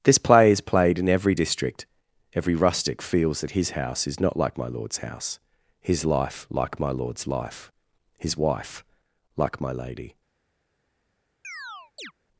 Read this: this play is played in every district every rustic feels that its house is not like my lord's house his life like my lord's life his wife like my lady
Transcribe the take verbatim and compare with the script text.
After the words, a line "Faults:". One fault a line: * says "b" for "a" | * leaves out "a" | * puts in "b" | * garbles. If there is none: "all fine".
this play is played in every district every rustic feels that his house is not like my lord's house his life like my lord's life his wife like my lady
Faults:
* says "his" for "its"